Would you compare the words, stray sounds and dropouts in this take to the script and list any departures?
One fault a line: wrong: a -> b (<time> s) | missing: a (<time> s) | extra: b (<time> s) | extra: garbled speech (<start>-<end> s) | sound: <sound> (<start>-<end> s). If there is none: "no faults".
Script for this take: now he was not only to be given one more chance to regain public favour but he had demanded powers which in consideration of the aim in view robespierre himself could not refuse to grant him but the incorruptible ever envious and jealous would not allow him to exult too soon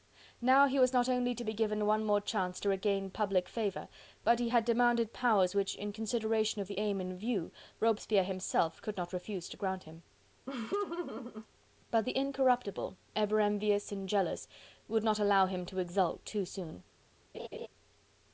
sound: laugh (10.5-11.5 s)
sound: laugh (17.3-17.7 s)